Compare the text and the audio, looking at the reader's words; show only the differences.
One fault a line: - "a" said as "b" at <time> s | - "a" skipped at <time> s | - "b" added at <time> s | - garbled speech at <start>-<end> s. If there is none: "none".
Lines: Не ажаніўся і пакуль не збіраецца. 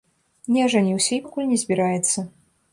none